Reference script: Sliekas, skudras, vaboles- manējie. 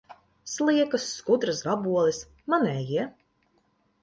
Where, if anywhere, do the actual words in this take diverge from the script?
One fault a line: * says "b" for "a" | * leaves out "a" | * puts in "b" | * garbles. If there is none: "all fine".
all fine